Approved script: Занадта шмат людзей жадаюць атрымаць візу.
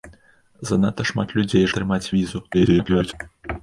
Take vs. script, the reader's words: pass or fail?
fail